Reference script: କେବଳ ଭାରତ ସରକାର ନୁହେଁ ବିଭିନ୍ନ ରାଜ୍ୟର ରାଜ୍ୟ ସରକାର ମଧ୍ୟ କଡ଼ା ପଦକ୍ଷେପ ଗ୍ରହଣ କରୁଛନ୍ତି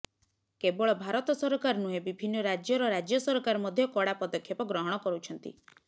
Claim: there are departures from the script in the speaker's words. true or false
false